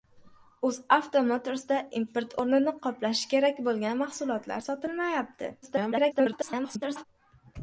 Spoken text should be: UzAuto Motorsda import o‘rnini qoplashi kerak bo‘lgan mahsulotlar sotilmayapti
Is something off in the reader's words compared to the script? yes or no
yes